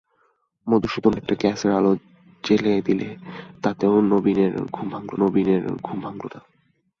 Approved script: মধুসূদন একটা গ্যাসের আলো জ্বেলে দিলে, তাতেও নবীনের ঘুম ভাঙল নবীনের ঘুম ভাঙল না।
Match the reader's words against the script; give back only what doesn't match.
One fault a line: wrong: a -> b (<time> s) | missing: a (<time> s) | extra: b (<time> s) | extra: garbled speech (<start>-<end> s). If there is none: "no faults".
no faults